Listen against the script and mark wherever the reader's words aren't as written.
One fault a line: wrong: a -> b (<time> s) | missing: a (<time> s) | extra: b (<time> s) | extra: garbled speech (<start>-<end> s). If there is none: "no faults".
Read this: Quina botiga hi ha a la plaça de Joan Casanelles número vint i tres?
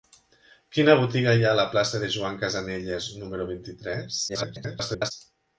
extra: garbled speech (4.3-5.1 s)